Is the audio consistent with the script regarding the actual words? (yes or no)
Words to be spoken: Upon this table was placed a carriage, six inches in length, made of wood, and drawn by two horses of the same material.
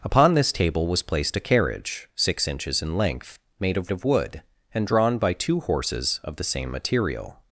no